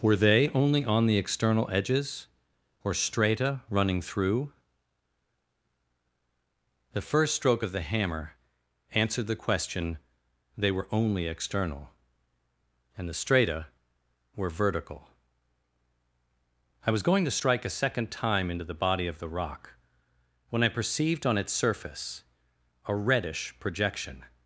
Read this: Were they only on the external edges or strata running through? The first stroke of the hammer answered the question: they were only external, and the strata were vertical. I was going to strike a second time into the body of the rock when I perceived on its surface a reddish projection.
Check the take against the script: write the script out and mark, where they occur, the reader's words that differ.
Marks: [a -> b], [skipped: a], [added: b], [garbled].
Were they only on the external edges or strata running through? The first stroke of the hammer answered the question: they were only external, and the strata were vertical. I was going to strike a second time into the body of the rock when I perceived on its surface a reddish projection.